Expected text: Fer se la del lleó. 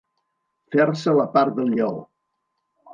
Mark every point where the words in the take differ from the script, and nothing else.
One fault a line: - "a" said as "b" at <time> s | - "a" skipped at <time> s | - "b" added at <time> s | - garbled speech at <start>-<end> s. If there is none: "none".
- "part" added at 1.4 s